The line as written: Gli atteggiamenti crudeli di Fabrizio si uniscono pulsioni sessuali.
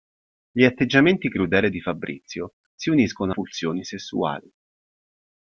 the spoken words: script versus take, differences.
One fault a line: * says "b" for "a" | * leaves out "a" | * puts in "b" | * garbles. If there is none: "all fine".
all fine